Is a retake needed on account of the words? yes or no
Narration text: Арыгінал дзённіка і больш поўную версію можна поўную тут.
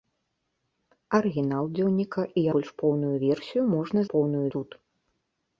no